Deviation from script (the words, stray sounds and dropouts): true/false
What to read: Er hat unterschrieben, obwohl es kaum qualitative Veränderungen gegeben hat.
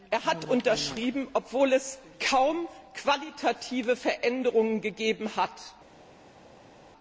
false